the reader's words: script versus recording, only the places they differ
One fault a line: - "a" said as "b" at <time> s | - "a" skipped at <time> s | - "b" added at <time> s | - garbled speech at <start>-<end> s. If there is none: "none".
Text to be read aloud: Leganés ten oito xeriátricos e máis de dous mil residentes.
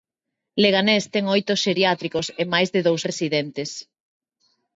- "mil" skipped at 3.0 s